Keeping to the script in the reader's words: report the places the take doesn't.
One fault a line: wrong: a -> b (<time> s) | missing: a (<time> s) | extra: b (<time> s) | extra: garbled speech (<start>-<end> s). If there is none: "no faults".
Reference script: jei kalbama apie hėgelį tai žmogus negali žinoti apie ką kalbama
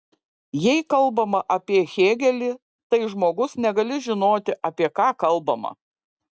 no faults